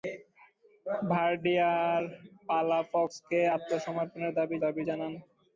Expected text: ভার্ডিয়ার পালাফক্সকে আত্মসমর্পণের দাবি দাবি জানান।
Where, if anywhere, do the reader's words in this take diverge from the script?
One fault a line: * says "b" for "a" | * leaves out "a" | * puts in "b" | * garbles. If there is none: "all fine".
all fine